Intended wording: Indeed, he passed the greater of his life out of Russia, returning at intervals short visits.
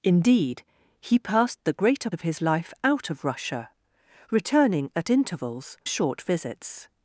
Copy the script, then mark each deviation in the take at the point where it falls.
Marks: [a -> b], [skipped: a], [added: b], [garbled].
Indeed, he passed the greater of his life out of Russia, returning at intervals short visits.